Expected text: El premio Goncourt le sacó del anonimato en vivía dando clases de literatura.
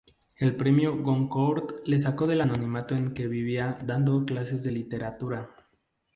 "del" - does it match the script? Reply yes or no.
yes